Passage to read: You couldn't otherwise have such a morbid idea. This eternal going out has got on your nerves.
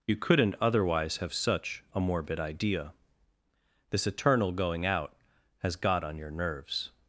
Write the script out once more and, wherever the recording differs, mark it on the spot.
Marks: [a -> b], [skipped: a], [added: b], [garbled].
You couldn't otherwise have such a morbid idea. This eternal going out has got on your nerves.